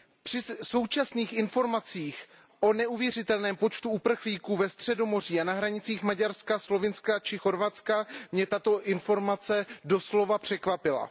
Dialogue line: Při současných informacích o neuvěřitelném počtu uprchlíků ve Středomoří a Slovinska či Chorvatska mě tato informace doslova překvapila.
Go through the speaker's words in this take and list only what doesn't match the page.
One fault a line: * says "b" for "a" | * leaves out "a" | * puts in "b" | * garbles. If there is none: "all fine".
* puts in "na hranicích Maďarska"